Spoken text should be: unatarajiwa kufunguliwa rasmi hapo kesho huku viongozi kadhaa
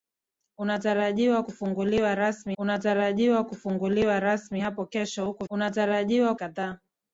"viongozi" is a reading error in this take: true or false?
true